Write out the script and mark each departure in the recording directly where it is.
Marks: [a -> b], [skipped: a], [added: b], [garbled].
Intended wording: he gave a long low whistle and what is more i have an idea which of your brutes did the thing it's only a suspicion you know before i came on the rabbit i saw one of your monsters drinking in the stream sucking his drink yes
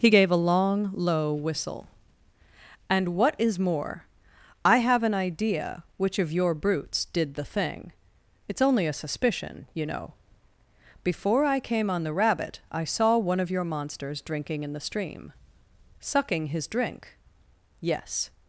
he gave a long low whistle and what is more i have an idea which of your brutes did the thing it's only a suspicion you know before i came on the rabbit i saw one of your monsters drinking in the stream sucking his drink yes